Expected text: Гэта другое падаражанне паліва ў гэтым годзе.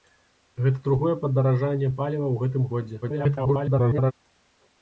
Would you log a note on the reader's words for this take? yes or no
yes